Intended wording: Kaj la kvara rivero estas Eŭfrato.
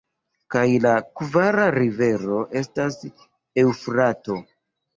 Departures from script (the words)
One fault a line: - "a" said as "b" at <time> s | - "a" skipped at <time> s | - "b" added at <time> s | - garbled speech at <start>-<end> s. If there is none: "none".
none